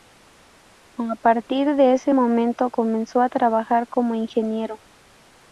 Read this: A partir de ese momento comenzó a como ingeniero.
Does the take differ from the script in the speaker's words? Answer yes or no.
yes